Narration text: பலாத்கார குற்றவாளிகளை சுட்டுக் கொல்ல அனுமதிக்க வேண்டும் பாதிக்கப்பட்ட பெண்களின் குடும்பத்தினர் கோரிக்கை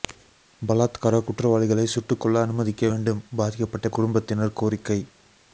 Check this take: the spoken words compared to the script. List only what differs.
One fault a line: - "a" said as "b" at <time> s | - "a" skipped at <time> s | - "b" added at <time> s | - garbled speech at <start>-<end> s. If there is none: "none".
- "பெண்களின்" skipped at 3.9 s